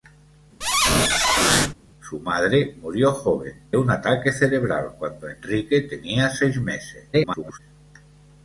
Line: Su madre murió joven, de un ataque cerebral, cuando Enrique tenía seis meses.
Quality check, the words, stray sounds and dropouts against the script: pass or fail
fail